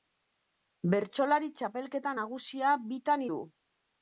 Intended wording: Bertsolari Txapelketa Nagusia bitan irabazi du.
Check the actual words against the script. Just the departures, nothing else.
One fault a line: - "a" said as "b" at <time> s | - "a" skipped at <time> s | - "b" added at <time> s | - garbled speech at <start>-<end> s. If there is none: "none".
- "irabazi" skipped at 3.3 s